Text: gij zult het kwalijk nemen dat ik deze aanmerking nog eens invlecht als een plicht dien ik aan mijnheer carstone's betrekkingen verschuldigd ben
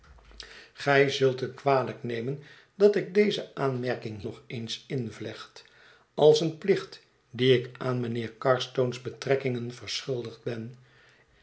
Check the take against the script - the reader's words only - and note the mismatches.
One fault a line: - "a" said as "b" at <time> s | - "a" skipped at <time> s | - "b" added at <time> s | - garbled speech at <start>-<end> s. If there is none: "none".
none